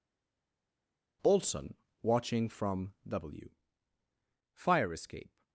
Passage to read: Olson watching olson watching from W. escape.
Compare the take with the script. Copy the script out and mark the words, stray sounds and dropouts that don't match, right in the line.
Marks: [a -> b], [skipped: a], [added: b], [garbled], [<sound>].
Olson watching [skipped: olson watching] from W. [added: fire] escape.